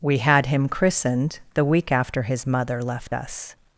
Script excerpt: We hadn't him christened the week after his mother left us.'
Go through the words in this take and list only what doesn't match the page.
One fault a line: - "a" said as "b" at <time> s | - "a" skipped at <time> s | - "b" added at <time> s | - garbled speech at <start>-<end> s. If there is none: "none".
- "hadn't" said as "had" at 0.2 s